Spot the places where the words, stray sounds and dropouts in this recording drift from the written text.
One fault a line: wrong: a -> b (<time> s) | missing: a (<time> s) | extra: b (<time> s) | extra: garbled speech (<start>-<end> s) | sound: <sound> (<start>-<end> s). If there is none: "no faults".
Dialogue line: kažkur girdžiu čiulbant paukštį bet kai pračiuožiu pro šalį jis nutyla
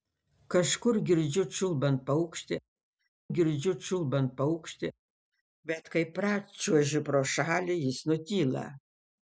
extra: girdžiu čiulbant paukštį (3.4 s)